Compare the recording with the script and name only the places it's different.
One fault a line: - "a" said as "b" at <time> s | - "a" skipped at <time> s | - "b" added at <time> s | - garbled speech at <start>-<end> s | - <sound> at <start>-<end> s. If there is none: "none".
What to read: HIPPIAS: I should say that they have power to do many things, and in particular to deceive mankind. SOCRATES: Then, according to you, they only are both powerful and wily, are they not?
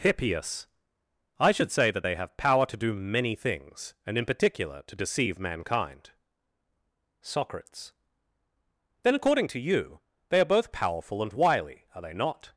- "only" skipped at 10.4 s